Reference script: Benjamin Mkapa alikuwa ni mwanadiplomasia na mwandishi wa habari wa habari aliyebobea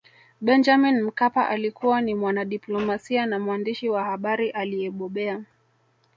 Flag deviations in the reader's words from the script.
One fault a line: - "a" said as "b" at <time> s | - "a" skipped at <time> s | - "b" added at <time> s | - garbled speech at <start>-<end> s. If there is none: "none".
- "wa habari" skipped at 4.5 s